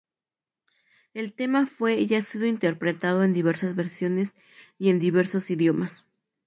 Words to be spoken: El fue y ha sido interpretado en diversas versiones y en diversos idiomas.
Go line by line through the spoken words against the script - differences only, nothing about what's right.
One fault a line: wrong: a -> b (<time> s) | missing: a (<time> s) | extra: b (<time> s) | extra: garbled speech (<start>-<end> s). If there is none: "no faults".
extra: tema (1.4 s)